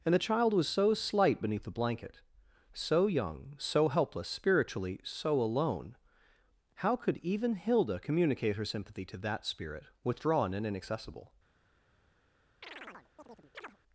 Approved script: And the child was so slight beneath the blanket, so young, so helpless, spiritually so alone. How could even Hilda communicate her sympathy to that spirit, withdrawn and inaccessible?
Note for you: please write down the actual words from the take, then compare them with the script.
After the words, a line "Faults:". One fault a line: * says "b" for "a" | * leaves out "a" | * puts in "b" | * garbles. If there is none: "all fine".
And the child was so slight beneath the blanket, so young, so helpless, spiritually so alone. How could even Hilda communicate her sympathy to that spirit, withdrawn and inaccessible?
Faults:
all fine